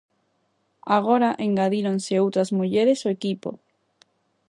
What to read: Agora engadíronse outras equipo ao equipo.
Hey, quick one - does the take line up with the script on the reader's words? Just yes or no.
no